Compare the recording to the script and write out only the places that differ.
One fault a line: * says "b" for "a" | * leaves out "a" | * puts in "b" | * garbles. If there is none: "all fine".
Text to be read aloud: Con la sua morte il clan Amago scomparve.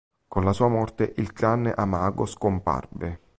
all fine